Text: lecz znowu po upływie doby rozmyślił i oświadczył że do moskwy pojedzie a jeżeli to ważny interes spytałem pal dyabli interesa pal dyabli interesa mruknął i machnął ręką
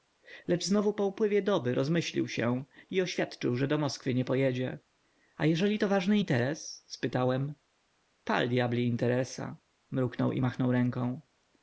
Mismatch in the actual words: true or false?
true